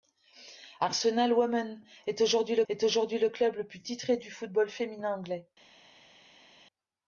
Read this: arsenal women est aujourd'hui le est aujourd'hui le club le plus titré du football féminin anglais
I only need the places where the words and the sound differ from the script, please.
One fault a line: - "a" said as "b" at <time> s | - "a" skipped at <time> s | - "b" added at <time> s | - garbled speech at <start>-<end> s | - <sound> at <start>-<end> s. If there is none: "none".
none